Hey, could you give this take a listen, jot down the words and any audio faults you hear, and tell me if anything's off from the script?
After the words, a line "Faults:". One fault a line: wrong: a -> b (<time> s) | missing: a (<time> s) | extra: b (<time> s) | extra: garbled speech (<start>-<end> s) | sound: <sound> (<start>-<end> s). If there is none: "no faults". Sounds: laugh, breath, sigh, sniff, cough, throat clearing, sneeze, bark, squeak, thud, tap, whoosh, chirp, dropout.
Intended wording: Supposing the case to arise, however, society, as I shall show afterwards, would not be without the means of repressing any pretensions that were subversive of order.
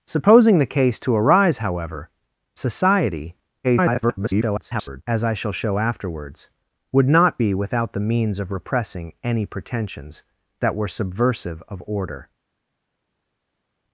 Supposing the case to arise, however, society, [garbled] as I shall show afterwards, would not be without the means of repressing any pretensions that were subversive of order.
Faults:
extra: garbled speech (3.6-5.0 s)